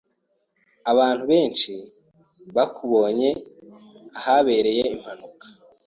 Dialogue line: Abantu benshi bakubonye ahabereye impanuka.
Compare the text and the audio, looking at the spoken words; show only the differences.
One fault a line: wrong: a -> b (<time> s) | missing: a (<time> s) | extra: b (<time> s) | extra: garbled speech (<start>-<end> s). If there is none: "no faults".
no faults